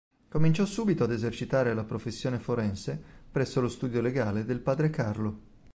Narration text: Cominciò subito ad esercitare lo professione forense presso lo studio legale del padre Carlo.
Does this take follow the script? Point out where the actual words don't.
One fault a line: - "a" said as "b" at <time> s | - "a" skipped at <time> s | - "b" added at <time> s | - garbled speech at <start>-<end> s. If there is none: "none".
- "lo" said as "la" at 1.7 s